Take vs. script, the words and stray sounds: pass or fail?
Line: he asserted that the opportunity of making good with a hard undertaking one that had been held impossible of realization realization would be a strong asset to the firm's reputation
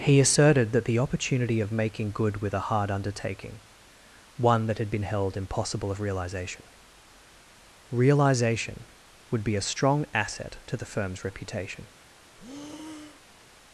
fail